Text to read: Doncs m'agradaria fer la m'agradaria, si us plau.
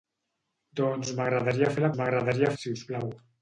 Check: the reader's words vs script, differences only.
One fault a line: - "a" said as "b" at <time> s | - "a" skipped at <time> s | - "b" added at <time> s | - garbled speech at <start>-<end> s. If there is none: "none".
none